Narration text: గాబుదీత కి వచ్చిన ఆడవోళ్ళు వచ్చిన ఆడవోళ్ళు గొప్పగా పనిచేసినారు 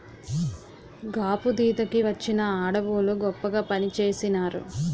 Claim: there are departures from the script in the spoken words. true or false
true